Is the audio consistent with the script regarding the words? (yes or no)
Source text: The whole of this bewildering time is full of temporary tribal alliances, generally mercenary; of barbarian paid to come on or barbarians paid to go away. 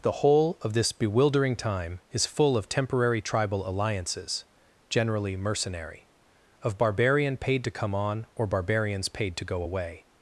yes